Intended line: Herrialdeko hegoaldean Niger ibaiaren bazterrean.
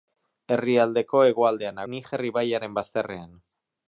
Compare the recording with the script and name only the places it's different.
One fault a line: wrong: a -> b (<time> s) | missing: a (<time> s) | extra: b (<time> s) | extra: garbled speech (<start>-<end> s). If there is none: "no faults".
no faults